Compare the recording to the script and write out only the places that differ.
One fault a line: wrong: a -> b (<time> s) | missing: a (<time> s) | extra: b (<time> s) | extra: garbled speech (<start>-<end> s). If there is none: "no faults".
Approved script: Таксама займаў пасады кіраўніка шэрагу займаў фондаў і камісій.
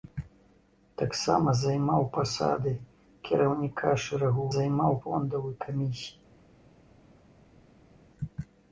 no faults